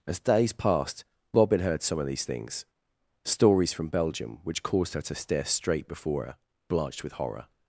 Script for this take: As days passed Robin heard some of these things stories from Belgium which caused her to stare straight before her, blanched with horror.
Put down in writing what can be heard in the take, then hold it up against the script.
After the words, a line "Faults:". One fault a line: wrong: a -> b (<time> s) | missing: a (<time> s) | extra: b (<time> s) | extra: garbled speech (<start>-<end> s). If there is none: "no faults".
As days passed Robin heard some of these things stories from Belgium which caused her to stare straight before her, blanched with horror.
Faults:
no faults